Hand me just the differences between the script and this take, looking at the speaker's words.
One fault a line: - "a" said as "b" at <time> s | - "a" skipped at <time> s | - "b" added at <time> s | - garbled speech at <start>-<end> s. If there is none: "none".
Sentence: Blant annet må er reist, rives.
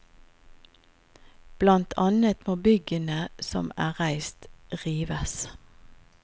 - "byggene som" added at 2.7 s